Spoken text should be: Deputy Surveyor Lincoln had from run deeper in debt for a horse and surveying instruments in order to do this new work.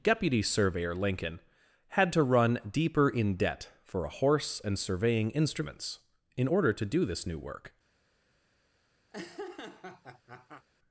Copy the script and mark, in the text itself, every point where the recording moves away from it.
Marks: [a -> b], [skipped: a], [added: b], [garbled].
Deputy Surveyor Lincoln had [from -> to] run deeper in debt for a horse and surveying instruments in order to do this new work.